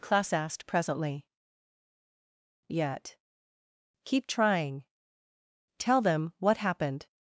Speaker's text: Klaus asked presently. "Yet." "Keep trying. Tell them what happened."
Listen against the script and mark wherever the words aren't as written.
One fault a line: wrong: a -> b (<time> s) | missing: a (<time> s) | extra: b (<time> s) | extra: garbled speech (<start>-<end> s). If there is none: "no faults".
no faults